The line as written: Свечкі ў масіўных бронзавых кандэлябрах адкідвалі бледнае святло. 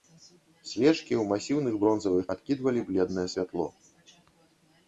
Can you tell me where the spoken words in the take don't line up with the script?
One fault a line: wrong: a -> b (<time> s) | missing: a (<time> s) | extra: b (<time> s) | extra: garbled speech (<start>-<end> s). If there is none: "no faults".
missing: кандэлябрах (2.2 s)